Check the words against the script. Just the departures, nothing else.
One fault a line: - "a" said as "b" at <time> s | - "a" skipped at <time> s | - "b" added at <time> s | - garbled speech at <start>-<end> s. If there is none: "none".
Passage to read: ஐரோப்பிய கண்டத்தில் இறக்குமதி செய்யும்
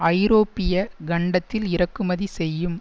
none